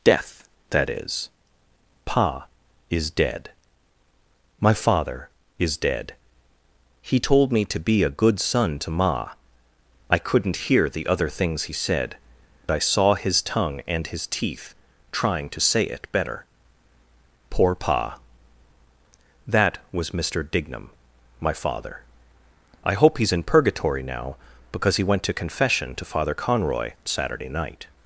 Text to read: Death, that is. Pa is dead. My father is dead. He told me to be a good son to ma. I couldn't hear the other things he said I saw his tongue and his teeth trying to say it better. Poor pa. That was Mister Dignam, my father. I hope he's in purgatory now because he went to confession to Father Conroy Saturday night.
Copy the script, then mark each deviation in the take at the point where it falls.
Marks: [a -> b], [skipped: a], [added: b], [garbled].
Death, that is. Pa is dead. My father is dead. He told me to be a good son to ma. I couldn't hear the other things he said I saw his tongue and his teeth trying to say it better. Poor pa. That was Mister Dignam, my father. I hope he's in purgatory now because he went to confession to Father Conroy Saturday night.